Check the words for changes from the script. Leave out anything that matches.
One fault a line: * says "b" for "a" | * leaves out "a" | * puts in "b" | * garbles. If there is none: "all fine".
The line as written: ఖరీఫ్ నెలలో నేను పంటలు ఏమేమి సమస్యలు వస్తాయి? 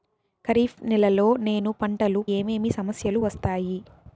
all fine